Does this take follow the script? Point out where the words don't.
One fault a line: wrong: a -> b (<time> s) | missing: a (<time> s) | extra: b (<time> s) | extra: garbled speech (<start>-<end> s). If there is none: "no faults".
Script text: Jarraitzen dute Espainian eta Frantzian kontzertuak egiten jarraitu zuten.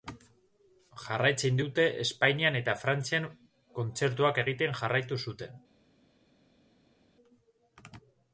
no faults